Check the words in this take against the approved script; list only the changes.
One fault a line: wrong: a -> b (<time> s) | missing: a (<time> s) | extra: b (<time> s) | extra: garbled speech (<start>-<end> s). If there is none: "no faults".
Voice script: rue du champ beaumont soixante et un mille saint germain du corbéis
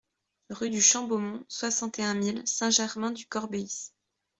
no faults